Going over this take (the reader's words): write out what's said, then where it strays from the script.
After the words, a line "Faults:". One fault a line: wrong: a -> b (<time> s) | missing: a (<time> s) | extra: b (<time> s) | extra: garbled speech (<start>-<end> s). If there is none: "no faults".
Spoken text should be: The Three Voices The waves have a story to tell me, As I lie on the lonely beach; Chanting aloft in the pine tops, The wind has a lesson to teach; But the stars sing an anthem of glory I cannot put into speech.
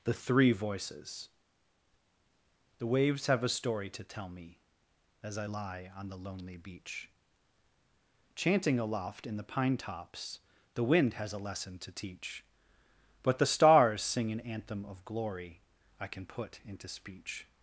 The Three Voices The waves have a story to tell me, As I lie on the lonely beach; Chanting aloft in the pine tops, The wind has a lesson to teach; But the stars sing an anthem of glory I can put into speech.
Faults:
wrong: cannot -> can (16.1 s)